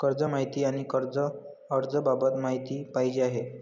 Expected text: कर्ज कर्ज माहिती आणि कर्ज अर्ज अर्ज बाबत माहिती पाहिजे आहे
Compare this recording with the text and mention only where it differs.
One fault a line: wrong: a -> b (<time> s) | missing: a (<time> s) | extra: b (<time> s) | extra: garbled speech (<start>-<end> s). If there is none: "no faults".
missing: कर्ज (0.2 s)
missing: अर्ज (1.9 s)